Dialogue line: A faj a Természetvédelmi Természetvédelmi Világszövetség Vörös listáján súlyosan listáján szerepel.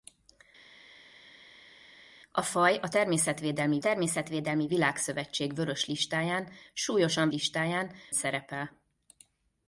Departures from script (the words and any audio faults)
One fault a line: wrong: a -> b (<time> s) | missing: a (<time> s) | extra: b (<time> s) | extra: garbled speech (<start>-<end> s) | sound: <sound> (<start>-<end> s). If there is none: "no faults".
no faults